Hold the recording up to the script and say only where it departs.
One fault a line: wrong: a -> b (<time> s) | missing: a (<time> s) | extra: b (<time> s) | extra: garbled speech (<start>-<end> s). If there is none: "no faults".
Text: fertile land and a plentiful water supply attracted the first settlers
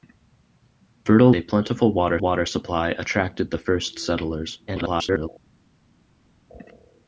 missing: land and (1.3 s)
extra: water (2.2 s)
extra: garbled speech (4.7-5.3 s)